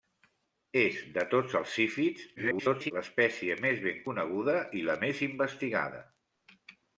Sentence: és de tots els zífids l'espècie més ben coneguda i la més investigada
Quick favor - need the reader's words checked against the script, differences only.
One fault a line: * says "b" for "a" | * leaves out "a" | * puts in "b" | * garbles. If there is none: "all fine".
* garbles